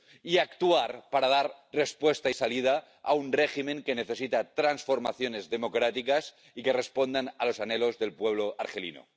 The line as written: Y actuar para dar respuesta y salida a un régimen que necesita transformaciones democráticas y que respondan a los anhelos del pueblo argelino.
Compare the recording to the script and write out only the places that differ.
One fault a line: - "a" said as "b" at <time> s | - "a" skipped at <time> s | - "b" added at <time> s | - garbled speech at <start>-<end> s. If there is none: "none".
none